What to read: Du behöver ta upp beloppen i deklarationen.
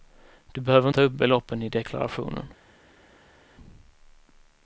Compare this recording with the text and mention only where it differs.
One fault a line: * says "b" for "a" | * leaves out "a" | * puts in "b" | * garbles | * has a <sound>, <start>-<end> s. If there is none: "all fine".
all fine